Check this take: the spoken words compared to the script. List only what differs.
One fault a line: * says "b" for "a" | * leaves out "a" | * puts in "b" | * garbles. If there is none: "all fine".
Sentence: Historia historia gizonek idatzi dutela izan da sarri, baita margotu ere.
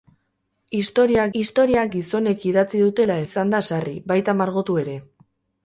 all fine